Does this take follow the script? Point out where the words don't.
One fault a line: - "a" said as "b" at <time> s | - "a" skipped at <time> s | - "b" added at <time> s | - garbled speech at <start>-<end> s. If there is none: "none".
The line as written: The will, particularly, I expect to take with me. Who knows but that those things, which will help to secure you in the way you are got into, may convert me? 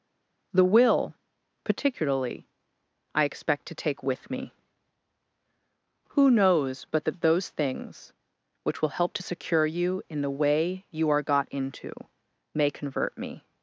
none